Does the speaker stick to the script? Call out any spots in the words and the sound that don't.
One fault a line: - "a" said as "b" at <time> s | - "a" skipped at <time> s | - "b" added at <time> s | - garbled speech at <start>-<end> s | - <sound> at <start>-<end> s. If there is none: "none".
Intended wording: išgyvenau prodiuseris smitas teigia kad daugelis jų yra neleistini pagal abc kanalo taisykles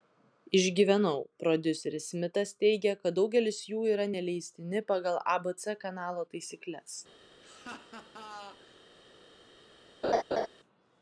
- laugh at 7.4-8.8 s
- laugh at 10.0-10.5 s